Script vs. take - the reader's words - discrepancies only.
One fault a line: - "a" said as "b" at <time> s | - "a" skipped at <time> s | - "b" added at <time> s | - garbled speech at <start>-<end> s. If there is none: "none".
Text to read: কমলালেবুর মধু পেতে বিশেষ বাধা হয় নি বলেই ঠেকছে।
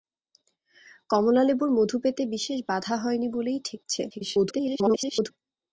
- garbled speech at 4.1-5.3 s